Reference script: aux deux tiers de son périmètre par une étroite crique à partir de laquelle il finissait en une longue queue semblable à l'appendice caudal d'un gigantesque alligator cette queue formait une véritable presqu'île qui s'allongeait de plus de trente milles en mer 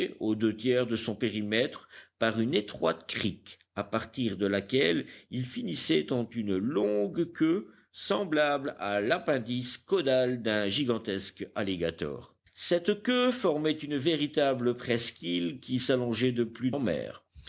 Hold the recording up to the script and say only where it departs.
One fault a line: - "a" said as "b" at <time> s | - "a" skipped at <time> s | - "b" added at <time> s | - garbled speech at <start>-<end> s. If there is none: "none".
- "de trente milles" skipped at 16.7 s